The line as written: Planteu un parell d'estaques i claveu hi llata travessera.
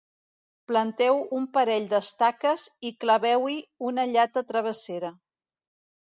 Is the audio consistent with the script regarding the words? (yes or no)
no